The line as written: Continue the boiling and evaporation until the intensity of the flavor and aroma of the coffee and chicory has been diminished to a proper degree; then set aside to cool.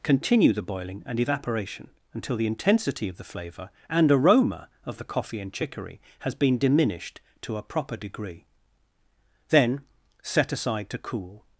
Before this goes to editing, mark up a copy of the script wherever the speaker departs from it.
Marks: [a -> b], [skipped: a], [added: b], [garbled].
Continue the boiling and evaporation until the intensity of the flavor and aroma of the coffee and chicory has been diminished to a proper degree; then set aside to cool.